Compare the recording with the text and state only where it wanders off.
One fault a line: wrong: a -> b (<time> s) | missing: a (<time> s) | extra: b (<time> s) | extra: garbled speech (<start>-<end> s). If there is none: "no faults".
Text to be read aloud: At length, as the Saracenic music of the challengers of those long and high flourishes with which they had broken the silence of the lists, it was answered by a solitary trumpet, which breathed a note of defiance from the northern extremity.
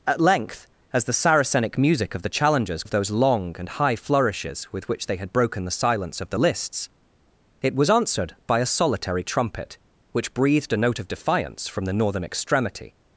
no faults